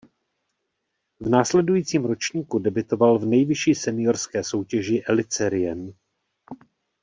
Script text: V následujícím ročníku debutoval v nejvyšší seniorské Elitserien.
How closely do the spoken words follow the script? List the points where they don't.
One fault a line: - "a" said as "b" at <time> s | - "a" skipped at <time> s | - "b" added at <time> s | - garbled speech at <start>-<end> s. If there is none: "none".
- "soutěži" added at 4.4 s